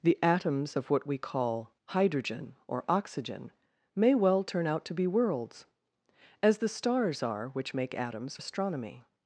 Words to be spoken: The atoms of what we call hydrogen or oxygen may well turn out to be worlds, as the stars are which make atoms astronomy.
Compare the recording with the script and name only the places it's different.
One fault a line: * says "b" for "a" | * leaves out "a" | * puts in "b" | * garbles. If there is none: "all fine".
all fine